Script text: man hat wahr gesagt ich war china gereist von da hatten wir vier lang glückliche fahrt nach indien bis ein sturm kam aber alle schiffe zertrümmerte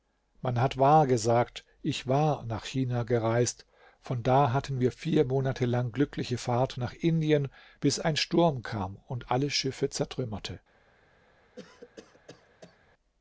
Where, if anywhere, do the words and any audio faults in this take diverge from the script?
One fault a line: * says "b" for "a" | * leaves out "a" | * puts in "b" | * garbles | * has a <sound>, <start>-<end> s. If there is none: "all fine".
* puts in "nach"
* puts in "monate"
* says "und" for "aber"
* has a cough, 11.6-12.8 s